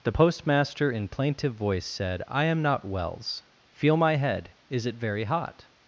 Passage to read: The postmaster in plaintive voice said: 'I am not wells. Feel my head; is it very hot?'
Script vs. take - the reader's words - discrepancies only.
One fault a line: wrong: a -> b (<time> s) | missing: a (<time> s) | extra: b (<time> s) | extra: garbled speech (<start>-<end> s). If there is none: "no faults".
no faults